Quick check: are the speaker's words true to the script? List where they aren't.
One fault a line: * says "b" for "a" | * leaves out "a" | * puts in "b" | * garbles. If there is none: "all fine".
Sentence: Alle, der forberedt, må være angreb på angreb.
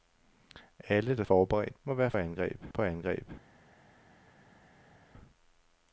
all fine